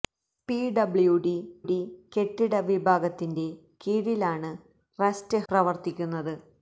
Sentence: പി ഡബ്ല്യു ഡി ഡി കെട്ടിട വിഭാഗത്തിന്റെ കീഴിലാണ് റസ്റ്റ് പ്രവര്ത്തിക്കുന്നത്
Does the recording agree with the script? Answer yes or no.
yes